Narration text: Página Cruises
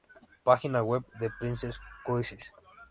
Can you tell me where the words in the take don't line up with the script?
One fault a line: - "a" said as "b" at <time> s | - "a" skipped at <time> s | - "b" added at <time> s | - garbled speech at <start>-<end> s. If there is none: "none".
- "web de Princess" added at 0.8 s